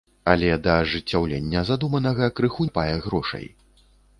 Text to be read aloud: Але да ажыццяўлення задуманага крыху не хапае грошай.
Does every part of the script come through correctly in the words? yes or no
no